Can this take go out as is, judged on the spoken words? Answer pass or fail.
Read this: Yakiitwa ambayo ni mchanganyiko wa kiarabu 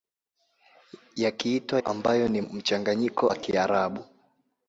pass